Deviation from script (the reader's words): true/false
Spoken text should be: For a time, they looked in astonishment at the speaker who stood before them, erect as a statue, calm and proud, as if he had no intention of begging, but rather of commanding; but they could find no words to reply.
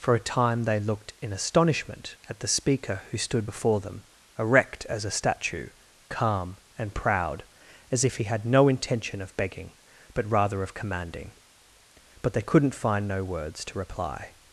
true